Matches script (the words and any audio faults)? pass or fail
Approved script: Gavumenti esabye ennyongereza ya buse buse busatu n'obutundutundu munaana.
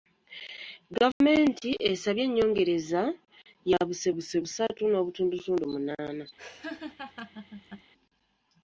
fail